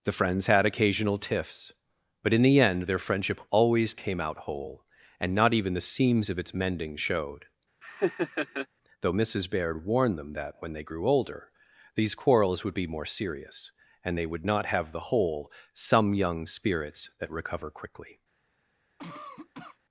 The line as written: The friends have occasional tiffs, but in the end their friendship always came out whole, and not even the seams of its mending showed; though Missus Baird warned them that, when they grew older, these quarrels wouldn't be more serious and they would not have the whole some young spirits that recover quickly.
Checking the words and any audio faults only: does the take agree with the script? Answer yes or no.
no